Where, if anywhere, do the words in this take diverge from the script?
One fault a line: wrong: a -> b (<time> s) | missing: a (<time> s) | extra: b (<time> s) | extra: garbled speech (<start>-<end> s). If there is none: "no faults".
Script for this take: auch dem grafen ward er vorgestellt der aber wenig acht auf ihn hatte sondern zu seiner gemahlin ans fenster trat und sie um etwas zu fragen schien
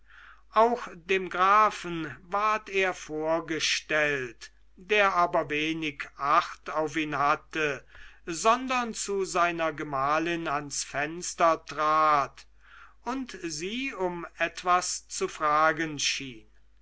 no faults